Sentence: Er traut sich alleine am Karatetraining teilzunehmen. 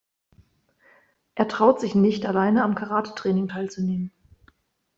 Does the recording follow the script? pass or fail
fail